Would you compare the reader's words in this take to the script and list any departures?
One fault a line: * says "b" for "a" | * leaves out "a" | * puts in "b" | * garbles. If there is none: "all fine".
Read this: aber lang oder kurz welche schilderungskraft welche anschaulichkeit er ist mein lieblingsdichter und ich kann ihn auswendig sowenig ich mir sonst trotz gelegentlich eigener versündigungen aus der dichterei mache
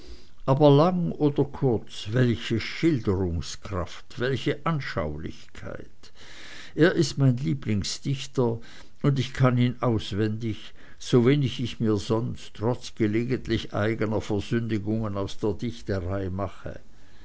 all fine